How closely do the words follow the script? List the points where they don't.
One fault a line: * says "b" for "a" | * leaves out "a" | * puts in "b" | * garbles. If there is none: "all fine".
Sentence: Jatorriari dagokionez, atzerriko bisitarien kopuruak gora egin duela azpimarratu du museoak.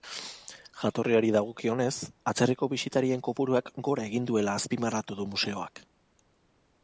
all fine